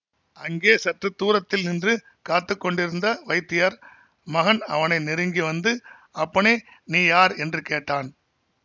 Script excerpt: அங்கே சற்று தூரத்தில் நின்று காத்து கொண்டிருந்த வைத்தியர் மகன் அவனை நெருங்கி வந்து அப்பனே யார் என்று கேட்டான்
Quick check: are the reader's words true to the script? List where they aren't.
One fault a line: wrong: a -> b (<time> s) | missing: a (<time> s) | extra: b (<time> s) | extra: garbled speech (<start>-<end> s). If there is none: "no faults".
extra: நீ (6.8 s)